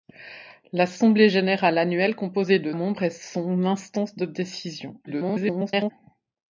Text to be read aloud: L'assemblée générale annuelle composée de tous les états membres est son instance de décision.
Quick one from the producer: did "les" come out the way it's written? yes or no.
no